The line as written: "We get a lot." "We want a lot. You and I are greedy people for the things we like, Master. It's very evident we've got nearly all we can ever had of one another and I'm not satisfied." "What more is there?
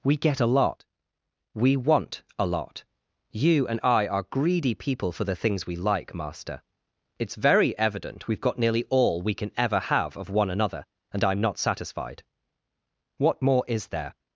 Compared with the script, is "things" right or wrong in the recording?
right